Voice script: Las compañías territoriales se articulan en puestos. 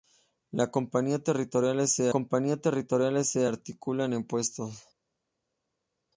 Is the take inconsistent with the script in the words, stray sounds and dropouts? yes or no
yes